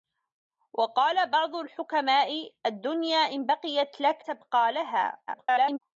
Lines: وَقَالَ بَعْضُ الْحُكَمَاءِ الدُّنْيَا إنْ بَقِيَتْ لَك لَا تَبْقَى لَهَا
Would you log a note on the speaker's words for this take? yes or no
yes